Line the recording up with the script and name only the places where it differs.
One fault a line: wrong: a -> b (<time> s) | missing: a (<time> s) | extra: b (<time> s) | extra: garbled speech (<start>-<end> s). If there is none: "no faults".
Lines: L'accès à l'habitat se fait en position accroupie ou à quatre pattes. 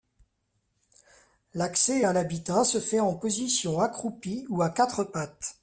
no faults